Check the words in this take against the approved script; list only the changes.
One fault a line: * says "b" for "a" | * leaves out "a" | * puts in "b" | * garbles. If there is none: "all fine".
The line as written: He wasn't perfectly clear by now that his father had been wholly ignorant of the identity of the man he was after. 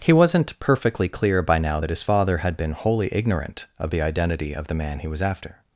all fine